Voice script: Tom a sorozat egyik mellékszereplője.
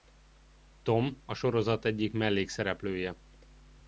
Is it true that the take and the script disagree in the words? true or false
false